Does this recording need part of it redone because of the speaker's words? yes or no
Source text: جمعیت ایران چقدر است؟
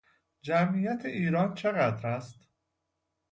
no